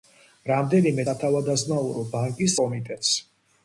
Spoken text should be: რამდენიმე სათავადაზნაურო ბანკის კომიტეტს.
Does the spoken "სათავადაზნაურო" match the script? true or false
true